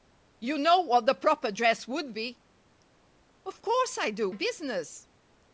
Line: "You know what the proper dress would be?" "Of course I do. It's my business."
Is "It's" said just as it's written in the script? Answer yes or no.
no